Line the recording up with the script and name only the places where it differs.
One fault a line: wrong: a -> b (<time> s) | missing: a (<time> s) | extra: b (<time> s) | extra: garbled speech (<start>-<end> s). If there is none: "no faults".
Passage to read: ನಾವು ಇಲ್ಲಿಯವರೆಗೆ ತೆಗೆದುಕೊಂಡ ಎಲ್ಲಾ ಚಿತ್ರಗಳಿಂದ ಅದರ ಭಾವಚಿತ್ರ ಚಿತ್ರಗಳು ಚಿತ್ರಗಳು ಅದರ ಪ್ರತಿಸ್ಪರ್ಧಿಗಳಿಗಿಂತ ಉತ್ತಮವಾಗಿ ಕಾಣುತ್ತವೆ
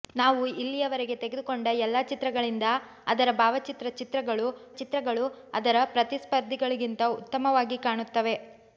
no faults